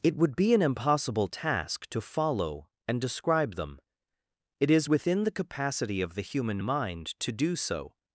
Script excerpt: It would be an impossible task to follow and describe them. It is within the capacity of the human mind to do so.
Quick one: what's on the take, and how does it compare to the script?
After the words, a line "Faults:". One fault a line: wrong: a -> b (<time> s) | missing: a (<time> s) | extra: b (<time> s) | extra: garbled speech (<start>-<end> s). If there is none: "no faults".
It would be an impossible task to follow and describe them. It is within the capacity of the human mind to do so.
Faults:
no faults